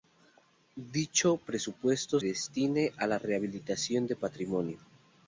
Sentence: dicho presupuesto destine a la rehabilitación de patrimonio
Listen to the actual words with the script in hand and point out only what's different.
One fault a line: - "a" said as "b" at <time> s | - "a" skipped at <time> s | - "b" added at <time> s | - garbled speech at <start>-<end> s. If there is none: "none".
none